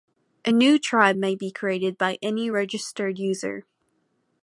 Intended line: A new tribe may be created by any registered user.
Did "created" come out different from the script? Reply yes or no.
no